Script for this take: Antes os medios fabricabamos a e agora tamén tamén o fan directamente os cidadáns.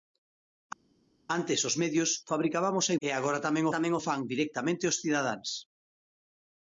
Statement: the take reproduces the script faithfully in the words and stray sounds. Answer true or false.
true